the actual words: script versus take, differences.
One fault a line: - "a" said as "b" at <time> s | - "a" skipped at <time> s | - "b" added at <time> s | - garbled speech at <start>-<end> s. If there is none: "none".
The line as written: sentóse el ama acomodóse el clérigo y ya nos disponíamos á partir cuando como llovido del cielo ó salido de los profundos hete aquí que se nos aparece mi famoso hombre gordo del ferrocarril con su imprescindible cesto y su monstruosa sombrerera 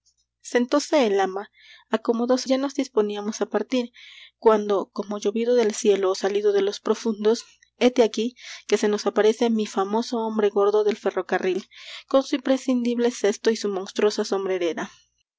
- "el clérigo y" skipped at 2.5 s